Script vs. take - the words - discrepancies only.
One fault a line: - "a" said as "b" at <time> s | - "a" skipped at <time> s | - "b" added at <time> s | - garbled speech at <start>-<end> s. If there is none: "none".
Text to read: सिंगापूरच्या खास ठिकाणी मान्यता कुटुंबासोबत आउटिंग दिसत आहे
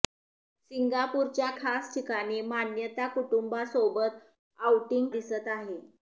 none